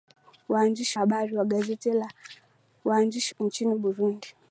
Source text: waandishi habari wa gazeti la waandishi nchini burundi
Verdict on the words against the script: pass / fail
pass